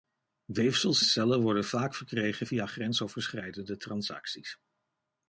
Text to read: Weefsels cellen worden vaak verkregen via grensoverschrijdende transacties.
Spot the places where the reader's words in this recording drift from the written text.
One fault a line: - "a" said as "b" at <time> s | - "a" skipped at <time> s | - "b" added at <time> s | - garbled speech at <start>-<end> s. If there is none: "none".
none